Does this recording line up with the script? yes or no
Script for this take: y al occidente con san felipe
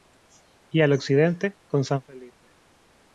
yes